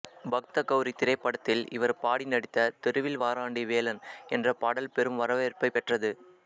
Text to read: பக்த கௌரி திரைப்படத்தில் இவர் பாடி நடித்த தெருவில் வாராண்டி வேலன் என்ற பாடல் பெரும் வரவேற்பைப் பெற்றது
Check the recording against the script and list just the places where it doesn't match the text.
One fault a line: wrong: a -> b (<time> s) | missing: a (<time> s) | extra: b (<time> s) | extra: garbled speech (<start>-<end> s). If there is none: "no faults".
no faults